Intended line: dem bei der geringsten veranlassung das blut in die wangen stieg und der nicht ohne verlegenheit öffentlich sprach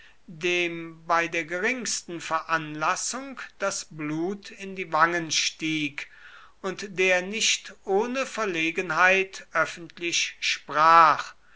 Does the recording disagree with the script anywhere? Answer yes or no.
no